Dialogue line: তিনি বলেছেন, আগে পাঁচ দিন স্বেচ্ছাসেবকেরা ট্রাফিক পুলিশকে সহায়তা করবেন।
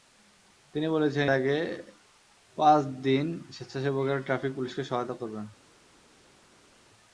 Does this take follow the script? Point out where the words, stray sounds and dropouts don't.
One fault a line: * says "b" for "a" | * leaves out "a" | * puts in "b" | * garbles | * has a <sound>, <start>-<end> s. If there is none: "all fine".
all fine